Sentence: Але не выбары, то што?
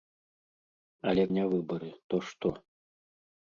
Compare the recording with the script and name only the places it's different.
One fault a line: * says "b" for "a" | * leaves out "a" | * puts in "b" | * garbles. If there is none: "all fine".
all fine